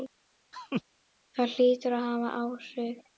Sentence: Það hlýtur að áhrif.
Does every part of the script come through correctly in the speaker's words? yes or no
no